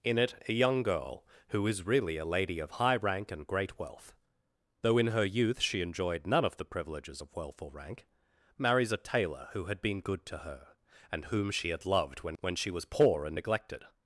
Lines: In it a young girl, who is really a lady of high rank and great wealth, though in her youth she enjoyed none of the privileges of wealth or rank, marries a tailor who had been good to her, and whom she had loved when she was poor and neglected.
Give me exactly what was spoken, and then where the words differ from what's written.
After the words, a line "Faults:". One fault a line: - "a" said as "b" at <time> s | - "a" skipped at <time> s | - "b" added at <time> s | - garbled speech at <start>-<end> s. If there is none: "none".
In it a young girl, who is really a lady of high rank and great wealth, though in her youth she enjoyed none of the privileges of wealth or rank, marries a tailor who had been good to her, and whom she had loved when when she was poor and neglected.
Faults:
- "when" added at 12.4 s